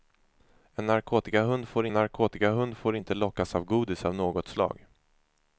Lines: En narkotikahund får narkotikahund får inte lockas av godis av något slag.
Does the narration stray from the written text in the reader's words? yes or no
no